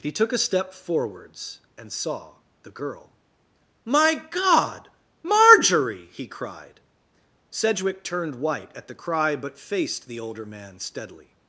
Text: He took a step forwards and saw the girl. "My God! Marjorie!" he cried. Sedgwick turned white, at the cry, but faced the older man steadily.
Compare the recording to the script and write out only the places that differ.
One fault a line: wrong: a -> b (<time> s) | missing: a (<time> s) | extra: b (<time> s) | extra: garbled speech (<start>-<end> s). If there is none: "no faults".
no faults